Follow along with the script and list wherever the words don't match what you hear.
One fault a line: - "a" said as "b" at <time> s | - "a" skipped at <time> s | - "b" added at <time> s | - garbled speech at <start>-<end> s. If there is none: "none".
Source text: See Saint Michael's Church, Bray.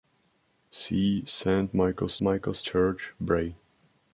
- "Michael's" added at 2.2 s